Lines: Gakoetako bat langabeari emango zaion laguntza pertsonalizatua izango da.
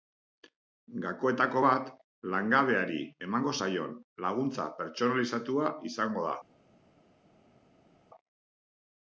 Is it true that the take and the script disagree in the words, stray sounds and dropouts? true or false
false